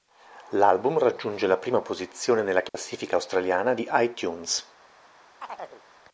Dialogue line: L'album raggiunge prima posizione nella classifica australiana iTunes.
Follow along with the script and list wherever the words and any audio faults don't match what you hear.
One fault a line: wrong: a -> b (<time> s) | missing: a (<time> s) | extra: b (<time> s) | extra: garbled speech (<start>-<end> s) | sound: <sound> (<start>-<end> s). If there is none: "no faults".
extra: la (1.4 s)
sound: dropout (2.7-2.7 s)
extra: di (3.7 s)
sound: chirp (5.4-5.8 s)